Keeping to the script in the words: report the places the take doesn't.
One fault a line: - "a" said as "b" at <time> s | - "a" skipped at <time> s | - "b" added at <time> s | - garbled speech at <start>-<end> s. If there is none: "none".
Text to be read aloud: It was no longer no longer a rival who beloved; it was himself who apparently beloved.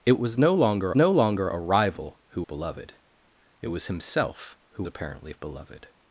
none